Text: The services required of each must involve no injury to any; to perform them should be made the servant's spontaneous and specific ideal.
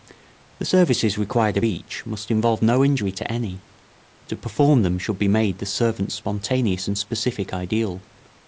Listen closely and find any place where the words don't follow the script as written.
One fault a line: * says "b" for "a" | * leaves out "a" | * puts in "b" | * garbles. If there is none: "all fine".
all fine